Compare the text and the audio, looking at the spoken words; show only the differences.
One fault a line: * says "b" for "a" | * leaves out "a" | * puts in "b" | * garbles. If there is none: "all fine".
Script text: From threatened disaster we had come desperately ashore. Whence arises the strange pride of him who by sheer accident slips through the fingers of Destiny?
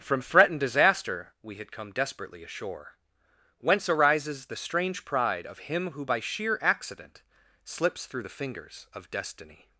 all fine